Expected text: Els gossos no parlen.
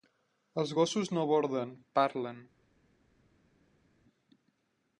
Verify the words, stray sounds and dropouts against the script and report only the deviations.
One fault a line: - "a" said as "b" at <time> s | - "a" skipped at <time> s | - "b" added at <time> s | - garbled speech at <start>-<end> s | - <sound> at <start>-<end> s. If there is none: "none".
- "borden" added at 1.3 s